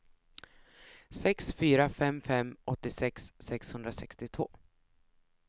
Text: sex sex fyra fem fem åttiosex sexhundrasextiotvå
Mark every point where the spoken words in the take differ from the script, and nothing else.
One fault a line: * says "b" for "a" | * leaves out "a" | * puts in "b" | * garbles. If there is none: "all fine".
* leaves out "sex"